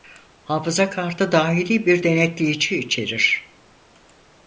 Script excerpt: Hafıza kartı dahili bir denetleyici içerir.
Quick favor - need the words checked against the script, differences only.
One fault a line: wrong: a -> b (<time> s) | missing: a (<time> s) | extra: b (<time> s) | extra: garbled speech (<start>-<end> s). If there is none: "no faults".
no faults